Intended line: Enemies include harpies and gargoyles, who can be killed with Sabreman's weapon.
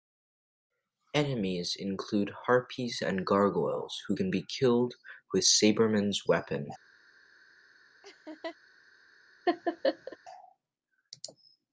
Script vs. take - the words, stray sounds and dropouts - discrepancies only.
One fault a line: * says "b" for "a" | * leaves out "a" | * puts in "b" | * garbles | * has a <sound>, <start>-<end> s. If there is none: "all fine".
* has a laugh, 8.0-8.6 s
* has a laugh, 9.5-10.2 s